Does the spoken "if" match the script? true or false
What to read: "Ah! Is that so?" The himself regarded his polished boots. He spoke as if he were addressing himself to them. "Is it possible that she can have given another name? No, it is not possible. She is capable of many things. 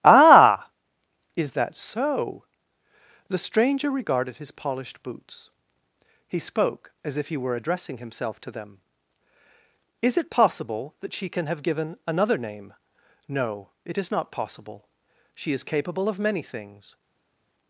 true